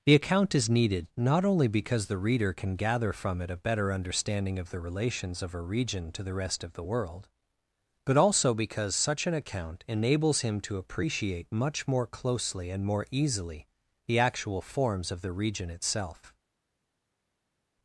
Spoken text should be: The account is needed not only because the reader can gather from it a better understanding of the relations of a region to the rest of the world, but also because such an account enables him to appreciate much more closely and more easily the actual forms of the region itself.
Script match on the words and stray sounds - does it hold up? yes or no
yes